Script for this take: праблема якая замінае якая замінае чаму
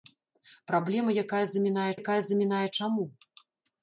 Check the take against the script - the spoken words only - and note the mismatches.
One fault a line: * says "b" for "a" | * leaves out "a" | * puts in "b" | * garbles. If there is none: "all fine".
all fine